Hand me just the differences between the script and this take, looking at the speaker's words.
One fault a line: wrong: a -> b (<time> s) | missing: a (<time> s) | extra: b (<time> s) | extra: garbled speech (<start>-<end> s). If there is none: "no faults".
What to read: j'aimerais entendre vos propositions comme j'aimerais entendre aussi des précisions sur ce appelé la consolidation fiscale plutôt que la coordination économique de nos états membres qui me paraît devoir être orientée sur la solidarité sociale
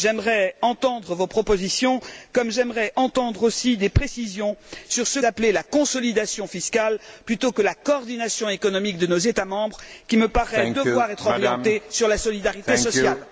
no faults